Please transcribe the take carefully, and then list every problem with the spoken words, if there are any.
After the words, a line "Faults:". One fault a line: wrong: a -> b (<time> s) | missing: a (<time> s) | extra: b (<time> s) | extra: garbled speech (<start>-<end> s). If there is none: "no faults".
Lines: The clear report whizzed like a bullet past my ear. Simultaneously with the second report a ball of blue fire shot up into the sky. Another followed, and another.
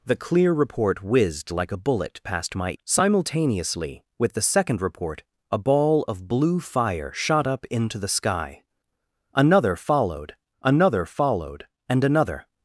The clear report whizzed like a bullet past my. Simultaneously with the second report a ball of blue fire shot up into the sky. Another followed another followed, and another.
Faults:
missing: ear (2.7 s)
extra: another followed (10.6 s)